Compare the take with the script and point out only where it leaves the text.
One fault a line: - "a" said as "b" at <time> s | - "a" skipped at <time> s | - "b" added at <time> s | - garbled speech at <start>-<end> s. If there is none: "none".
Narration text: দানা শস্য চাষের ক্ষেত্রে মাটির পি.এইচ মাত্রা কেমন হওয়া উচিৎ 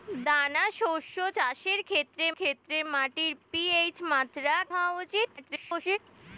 - "ক্ষেত্রে" added at 2.3 s
- "কেমন" skipped at 4.5 s
- garbled speech at 5.4-6.0 s